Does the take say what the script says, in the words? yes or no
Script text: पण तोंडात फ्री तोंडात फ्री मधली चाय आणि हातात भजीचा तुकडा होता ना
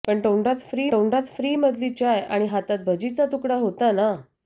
yes